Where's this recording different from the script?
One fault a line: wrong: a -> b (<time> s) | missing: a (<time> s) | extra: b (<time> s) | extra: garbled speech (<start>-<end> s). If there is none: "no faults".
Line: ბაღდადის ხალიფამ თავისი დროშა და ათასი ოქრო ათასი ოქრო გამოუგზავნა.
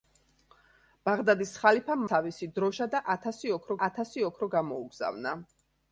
no faults